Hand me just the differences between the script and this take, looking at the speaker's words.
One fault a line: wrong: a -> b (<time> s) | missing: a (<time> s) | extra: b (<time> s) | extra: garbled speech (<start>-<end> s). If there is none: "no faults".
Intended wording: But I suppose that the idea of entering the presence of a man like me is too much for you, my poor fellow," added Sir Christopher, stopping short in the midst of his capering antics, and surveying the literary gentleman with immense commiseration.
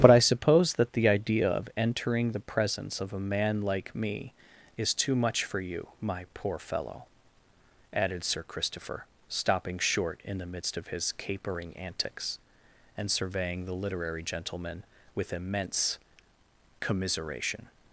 no faults